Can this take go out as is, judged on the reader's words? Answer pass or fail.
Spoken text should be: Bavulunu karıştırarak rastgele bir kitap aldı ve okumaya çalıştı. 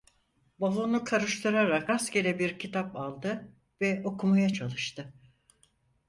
pass